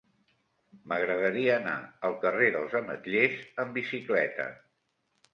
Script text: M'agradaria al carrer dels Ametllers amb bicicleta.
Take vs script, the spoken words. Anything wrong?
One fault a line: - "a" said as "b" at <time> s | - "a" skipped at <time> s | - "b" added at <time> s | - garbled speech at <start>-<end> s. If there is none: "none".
- "anar" added at 1.6 s